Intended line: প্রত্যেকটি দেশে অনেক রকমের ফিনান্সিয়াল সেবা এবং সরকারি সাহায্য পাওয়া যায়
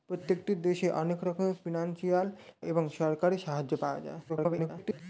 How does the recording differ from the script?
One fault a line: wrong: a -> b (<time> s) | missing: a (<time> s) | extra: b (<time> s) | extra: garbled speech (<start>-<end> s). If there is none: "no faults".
missing: সেবা (2.3 s)
extra: garbled speech (4.3-5.0 s)